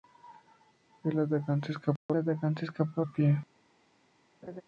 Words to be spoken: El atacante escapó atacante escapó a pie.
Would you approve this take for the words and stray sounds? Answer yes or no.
no